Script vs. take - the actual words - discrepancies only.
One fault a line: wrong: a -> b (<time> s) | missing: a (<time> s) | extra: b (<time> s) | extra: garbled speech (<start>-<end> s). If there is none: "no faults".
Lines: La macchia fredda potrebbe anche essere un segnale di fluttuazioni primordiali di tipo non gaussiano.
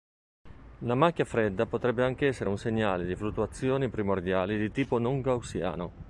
no faults